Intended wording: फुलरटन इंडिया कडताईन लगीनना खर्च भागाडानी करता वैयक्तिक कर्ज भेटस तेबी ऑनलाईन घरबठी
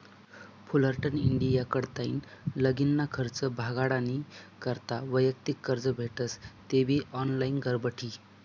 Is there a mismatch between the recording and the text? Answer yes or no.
no